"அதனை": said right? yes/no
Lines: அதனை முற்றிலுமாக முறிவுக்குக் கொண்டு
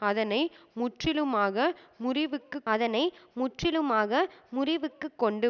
yes